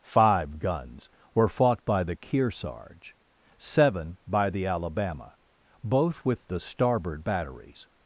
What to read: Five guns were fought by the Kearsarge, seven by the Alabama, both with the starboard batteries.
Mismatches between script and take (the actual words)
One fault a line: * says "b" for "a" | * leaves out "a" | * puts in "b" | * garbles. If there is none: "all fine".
all fine